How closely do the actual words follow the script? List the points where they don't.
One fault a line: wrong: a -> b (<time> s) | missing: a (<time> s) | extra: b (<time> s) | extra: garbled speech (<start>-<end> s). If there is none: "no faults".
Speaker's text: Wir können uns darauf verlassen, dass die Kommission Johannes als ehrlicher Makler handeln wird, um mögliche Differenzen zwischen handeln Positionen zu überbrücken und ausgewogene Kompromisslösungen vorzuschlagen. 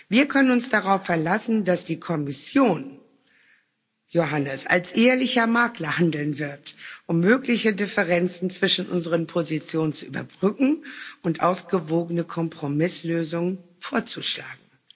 wrong: handeln -> unseren (8.9 s)